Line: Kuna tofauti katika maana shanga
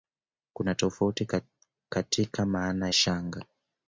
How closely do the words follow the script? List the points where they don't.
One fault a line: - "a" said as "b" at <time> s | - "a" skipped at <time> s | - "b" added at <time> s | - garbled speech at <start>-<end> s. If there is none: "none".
none